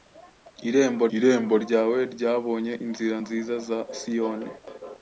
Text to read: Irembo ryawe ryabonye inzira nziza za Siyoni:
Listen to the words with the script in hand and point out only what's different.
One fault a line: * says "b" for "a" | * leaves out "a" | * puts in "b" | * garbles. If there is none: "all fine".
* puts in "irembo"